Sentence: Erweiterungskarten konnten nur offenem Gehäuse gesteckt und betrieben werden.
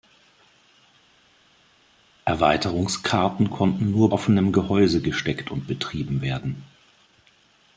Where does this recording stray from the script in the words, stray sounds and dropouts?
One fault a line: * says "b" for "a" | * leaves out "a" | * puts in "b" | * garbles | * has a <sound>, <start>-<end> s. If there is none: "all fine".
all fine